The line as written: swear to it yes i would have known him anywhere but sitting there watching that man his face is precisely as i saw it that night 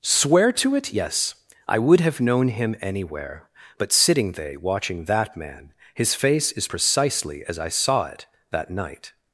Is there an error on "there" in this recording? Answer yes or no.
yes